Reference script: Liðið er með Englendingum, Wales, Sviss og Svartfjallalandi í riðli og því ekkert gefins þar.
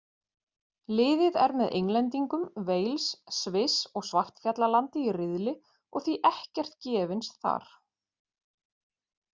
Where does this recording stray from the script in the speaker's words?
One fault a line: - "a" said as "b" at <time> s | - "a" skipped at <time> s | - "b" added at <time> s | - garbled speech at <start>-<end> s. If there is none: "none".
none